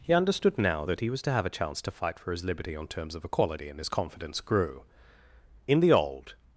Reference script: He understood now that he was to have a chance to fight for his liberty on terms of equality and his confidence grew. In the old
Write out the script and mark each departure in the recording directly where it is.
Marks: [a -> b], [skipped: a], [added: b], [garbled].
He understood now that he was to have a chance to fight for his liberty on terms of equality and his confidence grew. In the old